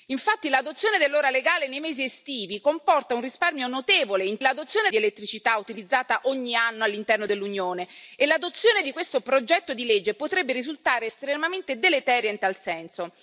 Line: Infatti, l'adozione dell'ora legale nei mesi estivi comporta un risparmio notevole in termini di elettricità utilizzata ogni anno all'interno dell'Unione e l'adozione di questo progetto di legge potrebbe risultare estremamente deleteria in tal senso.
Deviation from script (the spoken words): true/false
true